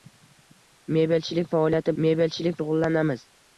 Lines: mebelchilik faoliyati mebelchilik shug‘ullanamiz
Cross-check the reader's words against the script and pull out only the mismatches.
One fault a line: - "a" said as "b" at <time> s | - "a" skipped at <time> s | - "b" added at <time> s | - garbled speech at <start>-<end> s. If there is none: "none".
none